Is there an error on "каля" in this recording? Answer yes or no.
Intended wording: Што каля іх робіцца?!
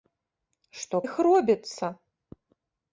yes